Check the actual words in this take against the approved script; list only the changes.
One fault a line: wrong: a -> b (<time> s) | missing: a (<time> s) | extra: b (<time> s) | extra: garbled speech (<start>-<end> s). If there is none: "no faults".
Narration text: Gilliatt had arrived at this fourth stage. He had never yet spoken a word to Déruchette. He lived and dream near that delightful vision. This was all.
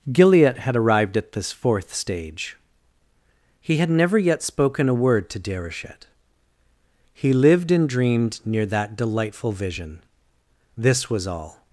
wrong: dream -> dreamed (7.9 s)